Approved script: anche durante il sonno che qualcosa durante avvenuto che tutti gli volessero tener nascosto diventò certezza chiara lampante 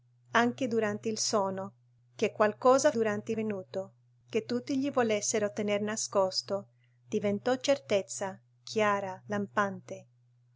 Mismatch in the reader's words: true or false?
false